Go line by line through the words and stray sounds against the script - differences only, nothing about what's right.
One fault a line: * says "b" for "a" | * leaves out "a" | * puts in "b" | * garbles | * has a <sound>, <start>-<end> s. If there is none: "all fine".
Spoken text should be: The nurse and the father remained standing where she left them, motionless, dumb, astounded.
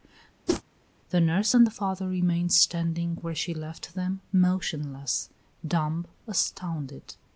* has a whoosh, 0.5-0.6 s